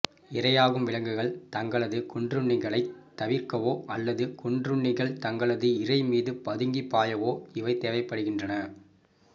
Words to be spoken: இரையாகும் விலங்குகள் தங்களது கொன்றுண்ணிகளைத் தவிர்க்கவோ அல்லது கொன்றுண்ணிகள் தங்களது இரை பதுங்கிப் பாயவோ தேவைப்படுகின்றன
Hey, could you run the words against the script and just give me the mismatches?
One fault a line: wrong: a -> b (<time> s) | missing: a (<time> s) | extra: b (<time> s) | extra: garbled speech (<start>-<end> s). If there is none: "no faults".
extra: மீது (6.1 s)
extra: இவை (7.5 s)